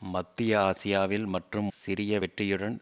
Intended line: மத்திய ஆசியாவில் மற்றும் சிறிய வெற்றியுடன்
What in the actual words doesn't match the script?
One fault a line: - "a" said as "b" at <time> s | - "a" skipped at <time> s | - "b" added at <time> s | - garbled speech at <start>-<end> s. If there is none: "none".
none